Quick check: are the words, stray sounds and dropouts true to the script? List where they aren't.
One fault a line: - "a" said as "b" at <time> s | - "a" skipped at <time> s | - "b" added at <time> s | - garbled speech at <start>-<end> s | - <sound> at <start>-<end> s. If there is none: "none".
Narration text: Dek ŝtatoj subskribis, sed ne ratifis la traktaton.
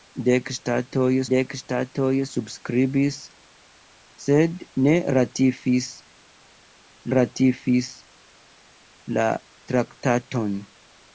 - "dek ŝtatoj" added at 1.3 s
- "ratifis" added at 7.2 s